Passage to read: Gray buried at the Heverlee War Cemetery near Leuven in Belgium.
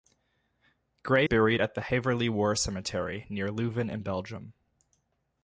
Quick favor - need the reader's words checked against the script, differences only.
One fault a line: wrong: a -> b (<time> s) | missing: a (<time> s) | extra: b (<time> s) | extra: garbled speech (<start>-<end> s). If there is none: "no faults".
no faults